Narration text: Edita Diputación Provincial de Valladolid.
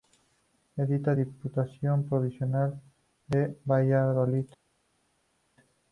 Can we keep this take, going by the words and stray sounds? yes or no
yes